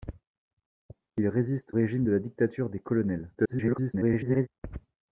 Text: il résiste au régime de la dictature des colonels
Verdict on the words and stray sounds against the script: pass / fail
fail